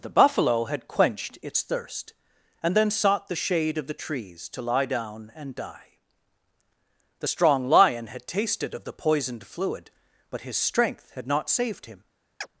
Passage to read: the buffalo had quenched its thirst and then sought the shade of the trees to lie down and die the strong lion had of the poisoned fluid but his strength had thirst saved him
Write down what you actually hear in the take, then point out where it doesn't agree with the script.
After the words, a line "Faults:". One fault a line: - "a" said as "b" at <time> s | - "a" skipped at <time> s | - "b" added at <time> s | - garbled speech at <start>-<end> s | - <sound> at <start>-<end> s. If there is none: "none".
the buffalo had quenched its thirst and then sought the shade of the trees to lie down and die the strong lion had tasted of the poisoned fluid but his strength had not saved him
Faults:
- "tasted" added at 8.3 s
- "thirst" said as "not" at 11.3 s
- chirp at 12.4-12.5 s